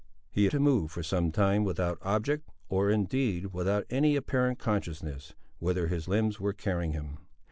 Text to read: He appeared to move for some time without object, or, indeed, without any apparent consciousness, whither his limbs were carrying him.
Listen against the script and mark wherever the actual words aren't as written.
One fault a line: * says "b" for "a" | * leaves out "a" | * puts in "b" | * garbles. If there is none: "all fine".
* leaves out "appeared"